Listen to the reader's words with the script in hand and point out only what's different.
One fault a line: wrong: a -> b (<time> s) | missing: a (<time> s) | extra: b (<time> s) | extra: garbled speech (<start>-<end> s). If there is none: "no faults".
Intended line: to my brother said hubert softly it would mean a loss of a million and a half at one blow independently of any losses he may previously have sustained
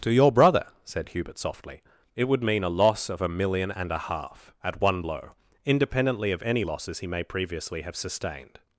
wrong: my -> your (0.1 s)